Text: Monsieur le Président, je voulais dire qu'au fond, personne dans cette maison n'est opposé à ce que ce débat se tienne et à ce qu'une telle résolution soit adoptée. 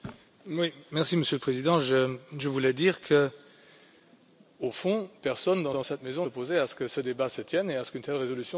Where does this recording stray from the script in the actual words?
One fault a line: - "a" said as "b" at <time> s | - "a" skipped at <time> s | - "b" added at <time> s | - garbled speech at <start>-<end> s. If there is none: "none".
- "dans" added at 5.7 s
- "n'est" skipped at 6.3 s